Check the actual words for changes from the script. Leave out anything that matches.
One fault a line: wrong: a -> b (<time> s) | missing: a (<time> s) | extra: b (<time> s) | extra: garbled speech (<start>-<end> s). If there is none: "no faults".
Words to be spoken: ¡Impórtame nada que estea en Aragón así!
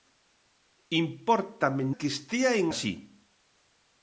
missing: nada (1.8 s)
missing: Aragón (2.7 s)